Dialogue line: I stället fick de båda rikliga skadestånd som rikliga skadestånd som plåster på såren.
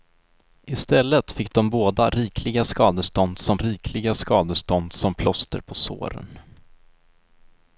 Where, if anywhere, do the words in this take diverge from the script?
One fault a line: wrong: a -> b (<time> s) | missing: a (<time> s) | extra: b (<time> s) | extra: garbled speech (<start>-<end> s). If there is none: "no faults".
no faults